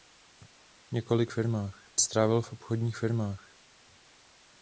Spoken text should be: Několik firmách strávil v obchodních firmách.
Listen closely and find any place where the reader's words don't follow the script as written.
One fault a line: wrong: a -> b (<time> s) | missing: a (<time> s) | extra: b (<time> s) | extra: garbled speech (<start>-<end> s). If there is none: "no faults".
no faults